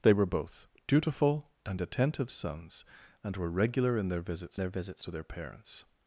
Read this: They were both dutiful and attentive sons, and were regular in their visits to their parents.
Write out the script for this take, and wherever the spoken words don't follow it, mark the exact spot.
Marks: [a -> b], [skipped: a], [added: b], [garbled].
They were both dutiful and attentive sons, and were regular in their visits [added: their visits] to their parents.